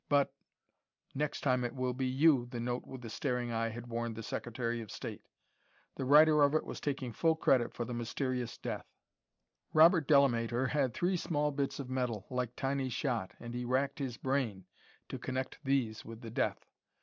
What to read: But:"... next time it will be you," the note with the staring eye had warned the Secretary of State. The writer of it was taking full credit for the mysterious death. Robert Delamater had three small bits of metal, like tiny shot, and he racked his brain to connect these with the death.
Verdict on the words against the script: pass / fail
pass